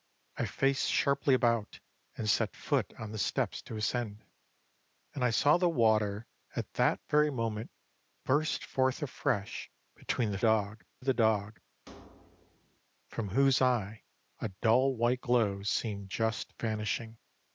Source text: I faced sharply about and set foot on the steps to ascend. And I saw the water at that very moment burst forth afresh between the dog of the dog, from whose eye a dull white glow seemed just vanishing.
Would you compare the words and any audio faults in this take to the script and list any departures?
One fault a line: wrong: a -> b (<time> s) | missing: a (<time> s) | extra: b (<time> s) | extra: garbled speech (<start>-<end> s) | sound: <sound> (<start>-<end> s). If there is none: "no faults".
sound: thud (11.9-12.8 s)